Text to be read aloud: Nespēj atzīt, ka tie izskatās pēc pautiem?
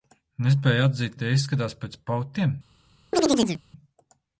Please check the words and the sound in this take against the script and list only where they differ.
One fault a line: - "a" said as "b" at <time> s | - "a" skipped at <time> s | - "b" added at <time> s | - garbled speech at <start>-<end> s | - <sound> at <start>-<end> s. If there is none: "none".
- "ka" skipped at 1.2 s
- chirp at 3.1-3.6 s